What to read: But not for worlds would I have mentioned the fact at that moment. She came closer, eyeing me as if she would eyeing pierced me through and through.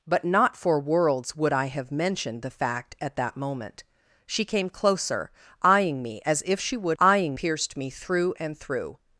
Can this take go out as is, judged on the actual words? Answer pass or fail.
pass